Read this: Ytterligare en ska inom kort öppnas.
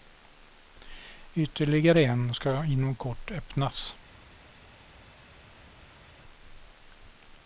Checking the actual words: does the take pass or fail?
pass